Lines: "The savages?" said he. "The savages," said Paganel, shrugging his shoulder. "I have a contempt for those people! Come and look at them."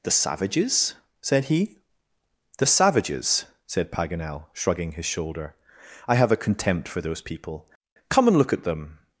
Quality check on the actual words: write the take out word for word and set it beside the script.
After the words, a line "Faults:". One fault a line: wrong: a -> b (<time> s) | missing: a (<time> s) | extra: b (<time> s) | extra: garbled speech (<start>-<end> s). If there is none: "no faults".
"The savages?" said he. "The savages," said Paganel, shrugging his shoulder. "I have a contempt for those people! Come and look at them."
Faults:
no faults